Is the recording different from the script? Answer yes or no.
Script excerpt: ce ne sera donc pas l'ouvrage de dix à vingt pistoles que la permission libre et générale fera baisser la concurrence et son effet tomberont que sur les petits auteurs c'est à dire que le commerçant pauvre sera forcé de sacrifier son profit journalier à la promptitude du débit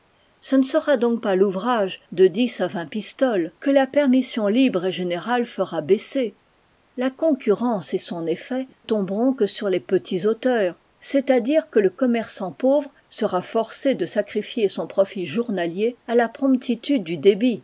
no